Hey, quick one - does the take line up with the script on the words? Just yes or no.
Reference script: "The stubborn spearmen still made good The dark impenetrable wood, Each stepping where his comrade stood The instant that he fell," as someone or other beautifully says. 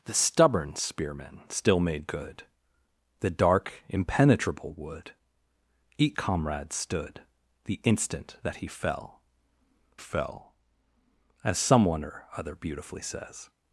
no